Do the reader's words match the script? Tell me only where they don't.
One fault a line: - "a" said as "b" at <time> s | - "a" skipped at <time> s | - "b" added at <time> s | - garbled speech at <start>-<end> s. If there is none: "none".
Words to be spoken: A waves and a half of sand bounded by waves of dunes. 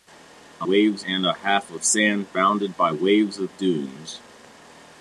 none